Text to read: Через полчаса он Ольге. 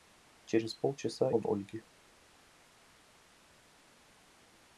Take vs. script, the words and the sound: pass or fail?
pass